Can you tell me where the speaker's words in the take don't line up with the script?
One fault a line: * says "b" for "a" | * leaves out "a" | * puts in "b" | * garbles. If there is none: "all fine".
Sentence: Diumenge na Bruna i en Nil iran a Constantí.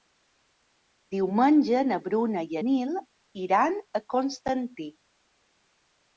* leaves out "en"